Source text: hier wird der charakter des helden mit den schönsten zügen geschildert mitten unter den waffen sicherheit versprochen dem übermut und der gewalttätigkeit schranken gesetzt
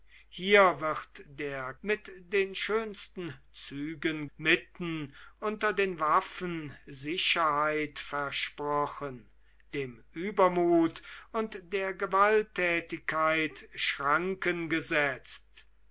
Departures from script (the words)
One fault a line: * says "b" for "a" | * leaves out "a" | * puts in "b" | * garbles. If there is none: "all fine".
* leaves out "charakter des helden"
* leaves out "geschildert"